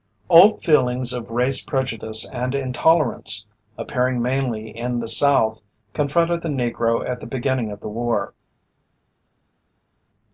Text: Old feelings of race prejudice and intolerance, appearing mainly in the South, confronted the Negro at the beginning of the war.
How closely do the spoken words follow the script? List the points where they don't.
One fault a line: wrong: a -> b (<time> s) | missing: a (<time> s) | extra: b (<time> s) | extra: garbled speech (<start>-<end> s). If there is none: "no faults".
no faults